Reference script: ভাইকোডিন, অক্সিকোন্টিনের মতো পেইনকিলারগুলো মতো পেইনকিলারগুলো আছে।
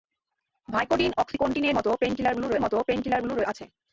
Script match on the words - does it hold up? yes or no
yes